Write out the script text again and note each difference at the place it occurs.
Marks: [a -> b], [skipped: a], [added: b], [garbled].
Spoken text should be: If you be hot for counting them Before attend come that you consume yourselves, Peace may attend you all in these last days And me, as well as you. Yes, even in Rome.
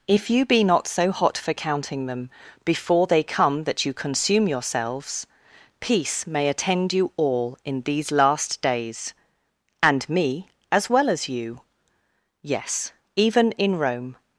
If you be [added: not so] hot for counting them Before [attend -> they] come that you consume yourselves, Peace may attend you all in these last days And me, as well as you. Yes, even in Rome.